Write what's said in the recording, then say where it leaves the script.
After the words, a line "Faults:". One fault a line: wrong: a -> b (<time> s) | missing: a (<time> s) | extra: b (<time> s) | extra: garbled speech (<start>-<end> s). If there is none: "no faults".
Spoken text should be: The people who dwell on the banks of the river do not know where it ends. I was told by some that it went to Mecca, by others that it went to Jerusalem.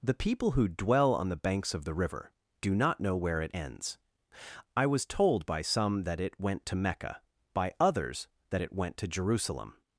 The people who dwell on the banks of the river do not know where it ends. I was told by some that it went to Mecca, by others that it went to Jerusalem.
Faults:
no faults